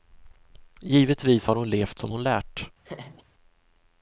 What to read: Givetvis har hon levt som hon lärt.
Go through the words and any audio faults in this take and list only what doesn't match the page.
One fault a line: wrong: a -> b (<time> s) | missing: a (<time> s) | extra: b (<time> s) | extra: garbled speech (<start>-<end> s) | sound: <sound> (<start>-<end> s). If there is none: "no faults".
sound: laugh (2.8-3.2 s)